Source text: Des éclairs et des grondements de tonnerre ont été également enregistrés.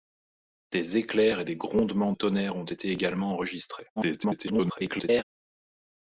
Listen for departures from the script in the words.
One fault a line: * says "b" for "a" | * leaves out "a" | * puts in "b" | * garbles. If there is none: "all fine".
* leaves out "de"
* garbles